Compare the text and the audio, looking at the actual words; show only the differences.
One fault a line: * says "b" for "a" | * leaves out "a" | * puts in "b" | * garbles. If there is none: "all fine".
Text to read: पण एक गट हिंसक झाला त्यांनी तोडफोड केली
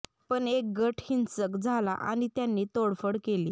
* puts in "आणि"